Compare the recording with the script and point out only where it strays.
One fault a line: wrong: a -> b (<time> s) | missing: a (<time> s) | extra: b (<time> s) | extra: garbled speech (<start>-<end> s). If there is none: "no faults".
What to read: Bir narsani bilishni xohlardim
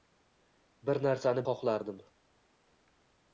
missing: bilishni (1.4 s)